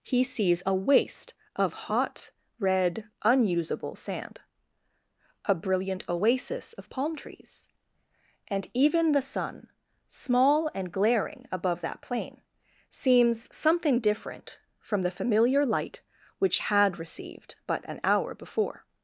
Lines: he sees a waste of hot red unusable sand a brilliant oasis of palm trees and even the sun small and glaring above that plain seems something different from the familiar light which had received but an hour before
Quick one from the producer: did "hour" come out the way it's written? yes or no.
yes